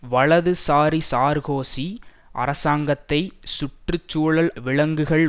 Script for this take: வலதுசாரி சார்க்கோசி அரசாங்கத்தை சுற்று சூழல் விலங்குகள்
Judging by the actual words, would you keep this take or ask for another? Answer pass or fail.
pass